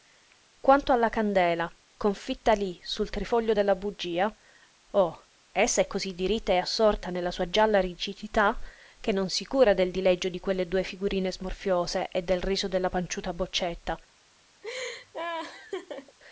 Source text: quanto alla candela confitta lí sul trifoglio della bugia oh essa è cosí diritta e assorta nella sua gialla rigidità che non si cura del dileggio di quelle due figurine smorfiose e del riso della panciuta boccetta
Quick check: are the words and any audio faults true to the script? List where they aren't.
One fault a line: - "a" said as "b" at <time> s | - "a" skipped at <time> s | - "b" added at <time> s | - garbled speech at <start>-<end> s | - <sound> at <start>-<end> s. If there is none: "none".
- laugh at 14.6-16.2 s